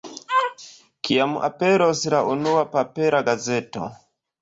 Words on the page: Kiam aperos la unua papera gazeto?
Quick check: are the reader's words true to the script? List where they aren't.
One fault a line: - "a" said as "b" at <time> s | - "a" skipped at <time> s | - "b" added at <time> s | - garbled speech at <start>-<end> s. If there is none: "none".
none